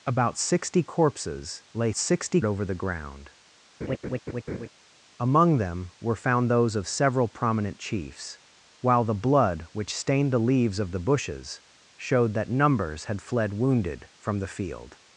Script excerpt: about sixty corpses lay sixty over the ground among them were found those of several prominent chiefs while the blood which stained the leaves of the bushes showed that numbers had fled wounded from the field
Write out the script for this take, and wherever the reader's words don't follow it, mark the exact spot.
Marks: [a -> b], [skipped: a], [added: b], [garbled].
about sixty corpses lay sixty over the ground among them were found those of several prominent chiefs while the blood which stained the leaves of the bushes showed that numbers had fled wounded from the field